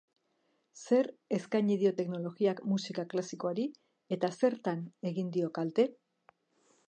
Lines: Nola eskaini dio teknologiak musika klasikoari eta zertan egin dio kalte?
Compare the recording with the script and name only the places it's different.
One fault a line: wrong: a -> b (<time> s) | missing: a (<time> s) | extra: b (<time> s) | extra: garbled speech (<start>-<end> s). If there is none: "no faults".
wrong: Nola -> Zer (0.8 s)